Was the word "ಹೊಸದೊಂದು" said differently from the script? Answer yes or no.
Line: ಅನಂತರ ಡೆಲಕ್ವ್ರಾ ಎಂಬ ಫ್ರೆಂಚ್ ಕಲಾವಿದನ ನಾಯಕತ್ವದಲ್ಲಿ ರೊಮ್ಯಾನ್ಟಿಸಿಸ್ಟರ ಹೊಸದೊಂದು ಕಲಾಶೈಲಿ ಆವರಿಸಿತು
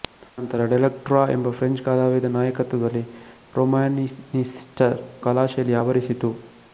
yes